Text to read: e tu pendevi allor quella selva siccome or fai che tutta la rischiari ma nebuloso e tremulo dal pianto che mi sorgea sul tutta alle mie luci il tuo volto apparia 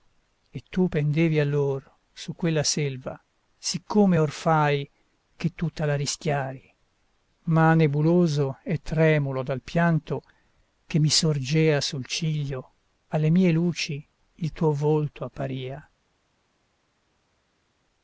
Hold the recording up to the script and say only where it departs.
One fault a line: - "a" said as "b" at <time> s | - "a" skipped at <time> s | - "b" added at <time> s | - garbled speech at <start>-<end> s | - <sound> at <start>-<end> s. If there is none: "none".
- "su" added at 2.1 s
- "tutta" said as "ciglio" at 12.1 s